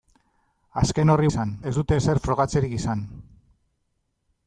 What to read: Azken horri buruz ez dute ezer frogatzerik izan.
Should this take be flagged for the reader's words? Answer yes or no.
yes